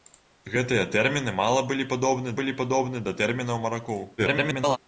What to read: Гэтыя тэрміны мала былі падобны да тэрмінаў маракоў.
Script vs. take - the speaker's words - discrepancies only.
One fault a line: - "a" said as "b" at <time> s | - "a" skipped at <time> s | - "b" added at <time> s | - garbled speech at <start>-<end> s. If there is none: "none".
- "былі падобны" added at 2.4 s
- garbled speech at 4.2-4.8 s